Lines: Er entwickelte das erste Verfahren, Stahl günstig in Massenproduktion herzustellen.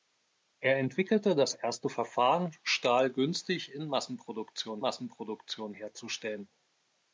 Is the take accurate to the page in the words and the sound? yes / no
no